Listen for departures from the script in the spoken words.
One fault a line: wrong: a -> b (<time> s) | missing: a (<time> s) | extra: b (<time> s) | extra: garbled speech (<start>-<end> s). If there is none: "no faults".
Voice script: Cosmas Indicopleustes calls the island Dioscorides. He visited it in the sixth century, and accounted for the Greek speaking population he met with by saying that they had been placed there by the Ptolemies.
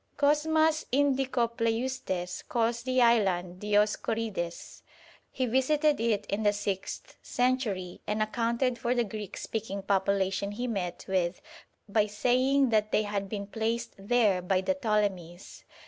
no faults